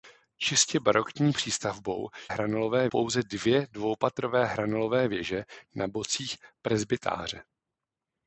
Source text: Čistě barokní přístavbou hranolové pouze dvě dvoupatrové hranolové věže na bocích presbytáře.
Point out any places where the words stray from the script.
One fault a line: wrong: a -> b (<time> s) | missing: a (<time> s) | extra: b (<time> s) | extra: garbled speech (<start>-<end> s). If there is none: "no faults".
no faults